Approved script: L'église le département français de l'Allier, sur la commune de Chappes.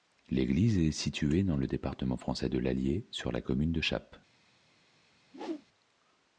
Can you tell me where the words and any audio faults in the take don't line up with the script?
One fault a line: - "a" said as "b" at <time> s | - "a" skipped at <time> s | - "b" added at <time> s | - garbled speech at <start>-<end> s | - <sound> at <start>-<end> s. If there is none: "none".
- "est située dans" added at 0.8 s
- whoosh at 5.2-5.7 s